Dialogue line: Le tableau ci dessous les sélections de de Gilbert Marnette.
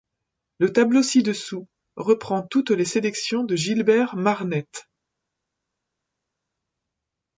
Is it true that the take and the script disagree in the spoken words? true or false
true